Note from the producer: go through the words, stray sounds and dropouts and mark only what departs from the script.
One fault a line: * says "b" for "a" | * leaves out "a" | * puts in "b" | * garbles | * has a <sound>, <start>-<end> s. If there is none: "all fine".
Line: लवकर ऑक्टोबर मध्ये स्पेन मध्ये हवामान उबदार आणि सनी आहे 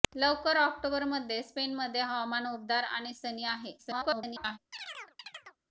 * garbles
* has a chirp, 4.7-5.6 s